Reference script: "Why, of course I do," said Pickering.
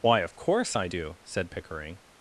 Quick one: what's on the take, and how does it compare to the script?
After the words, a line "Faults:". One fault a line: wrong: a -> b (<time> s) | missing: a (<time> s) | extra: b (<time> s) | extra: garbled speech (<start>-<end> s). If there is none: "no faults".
"Why, of course I do," said Pickering.
Faults:
no faults